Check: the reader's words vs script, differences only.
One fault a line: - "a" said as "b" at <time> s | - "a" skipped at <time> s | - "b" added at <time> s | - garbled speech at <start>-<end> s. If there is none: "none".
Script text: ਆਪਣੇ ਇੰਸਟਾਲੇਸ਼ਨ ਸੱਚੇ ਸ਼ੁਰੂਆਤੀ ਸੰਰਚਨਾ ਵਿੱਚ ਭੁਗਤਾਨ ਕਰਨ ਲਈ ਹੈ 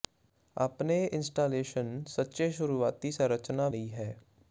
- "ਵਿੱਚ ਭੁਗਤਾਨ ਕਰਨ" skipped at 3.7 s